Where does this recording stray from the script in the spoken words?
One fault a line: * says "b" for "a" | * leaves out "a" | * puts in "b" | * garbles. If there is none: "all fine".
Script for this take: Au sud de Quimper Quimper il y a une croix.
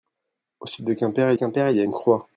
all fine